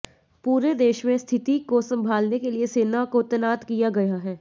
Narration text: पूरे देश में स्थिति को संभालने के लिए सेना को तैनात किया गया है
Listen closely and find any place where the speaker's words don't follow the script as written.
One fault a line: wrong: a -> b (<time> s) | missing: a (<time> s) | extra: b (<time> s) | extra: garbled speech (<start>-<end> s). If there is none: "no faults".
no faults